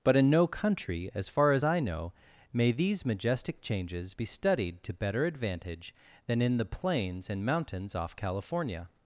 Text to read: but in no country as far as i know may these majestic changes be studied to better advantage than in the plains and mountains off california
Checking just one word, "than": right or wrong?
right